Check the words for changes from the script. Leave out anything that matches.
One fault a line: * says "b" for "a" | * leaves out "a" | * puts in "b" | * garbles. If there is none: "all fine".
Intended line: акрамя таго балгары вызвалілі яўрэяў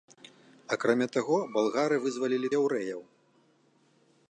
all fine